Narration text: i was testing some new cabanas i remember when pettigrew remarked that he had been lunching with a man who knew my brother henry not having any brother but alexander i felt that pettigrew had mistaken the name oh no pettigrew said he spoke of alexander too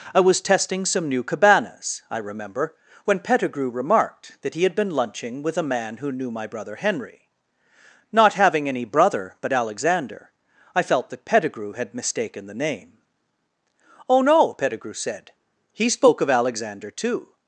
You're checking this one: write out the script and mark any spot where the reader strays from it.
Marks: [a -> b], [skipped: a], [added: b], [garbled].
i was testing some new cabanas i remember when pettigrew remarked that he had been lunching with a man who knew my brother henry not having any brother but alexander i felt that pettigrew had mistaken the name oh no pettigrew said he spoke of alexander too